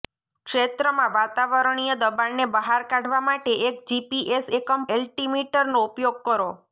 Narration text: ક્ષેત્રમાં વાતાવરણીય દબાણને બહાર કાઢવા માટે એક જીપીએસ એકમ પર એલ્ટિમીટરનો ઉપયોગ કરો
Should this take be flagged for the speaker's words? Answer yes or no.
yes